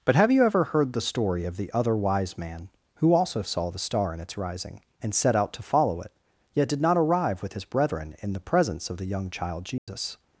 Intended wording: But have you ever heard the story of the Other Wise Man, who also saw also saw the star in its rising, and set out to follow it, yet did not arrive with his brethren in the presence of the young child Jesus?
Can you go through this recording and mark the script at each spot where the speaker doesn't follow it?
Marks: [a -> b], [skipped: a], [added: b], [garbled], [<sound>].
But have you ever heard the story of the Other Wise Man, who also saw [skipped: also saw] the star in its rising, and set out to follow it, yet did not arrive with his brethren in the presence of the young child Jesus? [dropout]